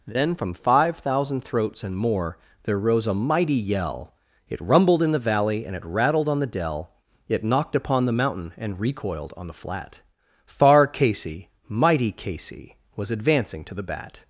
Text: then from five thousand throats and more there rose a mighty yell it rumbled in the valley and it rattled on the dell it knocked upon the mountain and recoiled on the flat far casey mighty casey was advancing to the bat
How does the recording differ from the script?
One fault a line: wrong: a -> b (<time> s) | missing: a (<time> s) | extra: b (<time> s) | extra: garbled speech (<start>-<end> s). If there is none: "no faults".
no faults